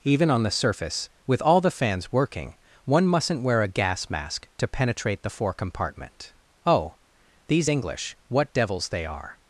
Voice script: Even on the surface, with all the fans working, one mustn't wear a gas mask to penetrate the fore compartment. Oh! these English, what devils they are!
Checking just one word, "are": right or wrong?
right